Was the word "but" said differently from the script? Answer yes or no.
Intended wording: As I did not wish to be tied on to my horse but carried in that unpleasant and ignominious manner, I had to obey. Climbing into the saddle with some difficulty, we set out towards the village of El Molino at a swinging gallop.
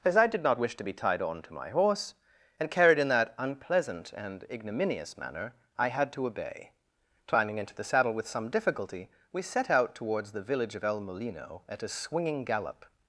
yes